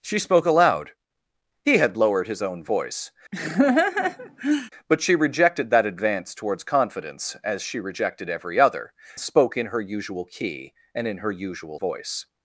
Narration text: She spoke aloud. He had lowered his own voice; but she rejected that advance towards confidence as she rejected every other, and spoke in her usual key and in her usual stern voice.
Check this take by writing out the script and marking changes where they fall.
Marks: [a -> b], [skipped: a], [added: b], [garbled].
She spoke aloud. He had lowered his own voice; but she rejected that advance towards confidence as she rejected every other, [skipped: and] spoke in her usual key and in her usual [skipped: stern] voice.